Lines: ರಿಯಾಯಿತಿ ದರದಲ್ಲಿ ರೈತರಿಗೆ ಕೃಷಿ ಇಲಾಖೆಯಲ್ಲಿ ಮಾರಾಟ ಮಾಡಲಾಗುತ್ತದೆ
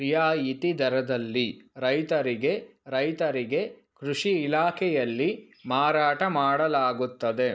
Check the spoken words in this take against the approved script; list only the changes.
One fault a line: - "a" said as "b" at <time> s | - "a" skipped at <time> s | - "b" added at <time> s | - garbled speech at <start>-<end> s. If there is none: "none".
- "ರೈತರಿಗೆ" added at 2.9 s